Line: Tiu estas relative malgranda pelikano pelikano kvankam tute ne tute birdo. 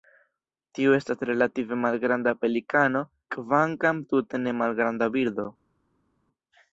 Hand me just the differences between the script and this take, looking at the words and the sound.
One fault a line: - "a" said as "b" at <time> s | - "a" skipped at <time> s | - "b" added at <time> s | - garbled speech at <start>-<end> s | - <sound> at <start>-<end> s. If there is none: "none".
- "pelikano" skipped at 3.0 s
- "tute" said as "malgranda" at 4.6 s